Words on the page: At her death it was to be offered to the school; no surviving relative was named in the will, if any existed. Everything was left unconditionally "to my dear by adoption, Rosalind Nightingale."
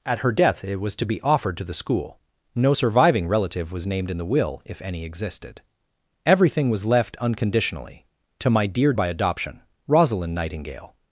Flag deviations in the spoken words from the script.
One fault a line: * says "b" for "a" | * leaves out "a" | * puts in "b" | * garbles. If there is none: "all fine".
all fine